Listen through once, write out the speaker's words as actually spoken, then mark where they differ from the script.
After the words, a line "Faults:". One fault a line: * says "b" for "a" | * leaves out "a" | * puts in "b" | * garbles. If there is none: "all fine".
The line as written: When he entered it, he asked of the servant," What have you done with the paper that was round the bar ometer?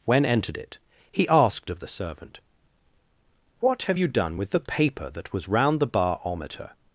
When entered it, he asked of the servant," What have you done with the paper that was round the bar ometer?
Faults:
* leaves out "he"